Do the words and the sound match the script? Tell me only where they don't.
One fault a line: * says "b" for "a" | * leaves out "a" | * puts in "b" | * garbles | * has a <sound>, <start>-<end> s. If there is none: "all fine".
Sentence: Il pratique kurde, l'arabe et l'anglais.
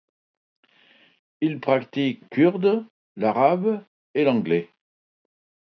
all fine